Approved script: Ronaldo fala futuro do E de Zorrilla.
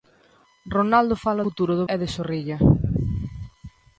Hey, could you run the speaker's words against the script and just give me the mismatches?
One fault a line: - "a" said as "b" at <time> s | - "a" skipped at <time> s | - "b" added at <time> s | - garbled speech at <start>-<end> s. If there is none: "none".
none